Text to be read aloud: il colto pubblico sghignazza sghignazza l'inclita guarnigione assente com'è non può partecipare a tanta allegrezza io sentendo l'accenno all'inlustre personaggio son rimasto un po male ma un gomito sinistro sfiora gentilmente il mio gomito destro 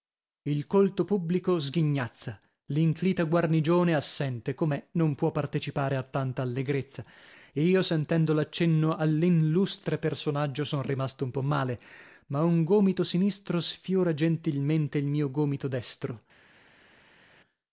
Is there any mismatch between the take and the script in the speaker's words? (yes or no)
yes